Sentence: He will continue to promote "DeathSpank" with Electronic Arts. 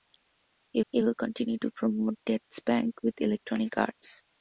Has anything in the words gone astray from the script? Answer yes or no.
yes